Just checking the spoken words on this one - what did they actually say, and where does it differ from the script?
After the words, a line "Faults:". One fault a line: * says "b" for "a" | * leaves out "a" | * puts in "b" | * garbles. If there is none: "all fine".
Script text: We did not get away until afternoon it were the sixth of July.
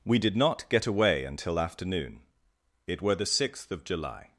We did not get away until afternoon it were the sixth of July.
Faults:
all fine